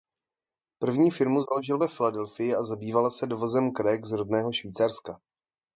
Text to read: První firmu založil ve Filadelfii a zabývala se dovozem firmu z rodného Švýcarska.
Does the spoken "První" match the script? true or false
true